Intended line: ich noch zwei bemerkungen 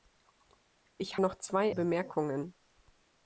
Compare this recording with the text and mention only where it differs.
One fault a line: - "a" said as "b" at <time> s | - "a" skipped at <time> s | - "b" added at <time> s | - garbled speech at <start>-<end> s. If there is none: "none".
none